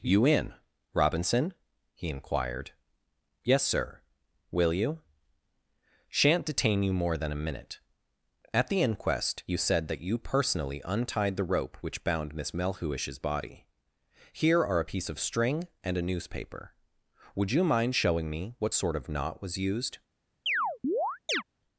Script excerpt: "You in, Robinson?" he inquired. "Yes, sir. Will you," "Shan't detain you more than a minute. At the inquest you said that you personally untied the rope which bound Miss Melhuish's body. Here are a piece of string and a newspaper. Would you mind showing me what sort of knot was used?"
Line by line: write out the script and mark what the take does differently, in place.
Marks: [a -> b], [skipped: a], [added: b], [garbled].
"You in, Robinson?" he inquired. "Yes, sir. Will you," "Shan't detain you more than a minute. At the inquest you said that you personally untied the rope which bound Miss Melhuish's body. Here are a piece of string and a newspaper. Would you mind showing me what sort of knot was used?"